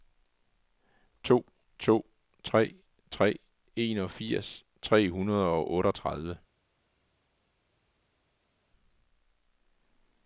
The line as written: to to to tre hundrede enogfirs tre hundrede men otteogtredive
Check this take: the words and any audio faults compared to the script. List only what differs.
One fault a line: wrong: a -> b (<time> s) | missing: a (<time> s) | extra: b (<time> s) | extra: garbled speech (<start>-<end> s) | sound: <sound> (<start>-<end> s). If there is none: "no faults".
wrong: to -> tre (2.4 s)
missing: hundrede (3.4 s)
wrong: men -> og (5.5 s)